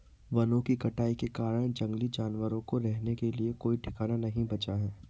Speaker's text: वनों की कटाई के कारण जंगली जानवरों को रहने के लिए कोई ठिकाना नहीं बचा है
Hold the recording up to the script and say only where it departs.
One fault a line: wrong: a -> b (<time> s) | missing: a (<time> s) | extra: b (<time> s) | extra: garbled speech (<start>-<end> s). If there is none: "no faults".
no faults